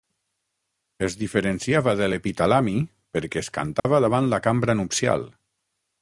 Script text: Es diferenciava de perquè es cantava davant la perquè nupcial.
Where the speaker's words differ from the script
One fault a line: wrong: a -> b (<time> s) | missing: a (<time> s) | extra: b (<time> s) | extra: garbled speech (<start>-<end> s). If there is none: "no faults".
extra: l'epitalami (2.1 s)
wrong: perquè -> cambra (4.5 s)